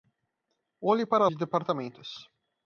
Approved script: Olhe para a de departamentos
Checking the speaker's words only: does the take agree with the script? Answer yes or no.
yes